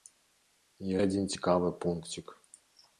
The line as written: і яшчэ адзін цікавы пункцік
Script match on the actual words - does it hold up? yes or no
no